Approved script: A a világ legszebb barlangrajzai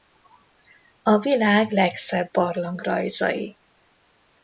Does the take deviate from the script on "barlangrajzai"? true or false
false